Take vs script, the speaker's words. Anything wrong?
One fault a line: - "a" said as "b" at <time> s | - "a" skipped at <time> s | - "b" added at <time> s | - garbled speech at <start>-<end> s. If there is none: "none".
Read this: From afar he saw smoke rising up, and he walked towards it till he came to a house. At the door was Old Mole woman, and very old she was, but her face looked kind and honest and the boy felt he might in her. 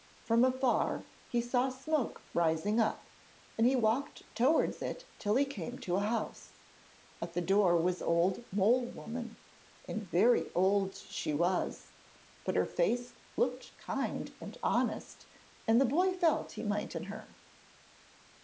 none